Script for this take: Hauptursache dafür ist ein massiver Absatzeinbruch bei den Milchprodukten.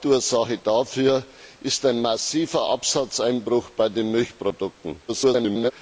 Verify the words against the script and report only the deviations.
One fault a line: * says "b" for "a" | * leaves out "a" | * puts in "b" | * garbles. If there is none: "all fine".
* garbles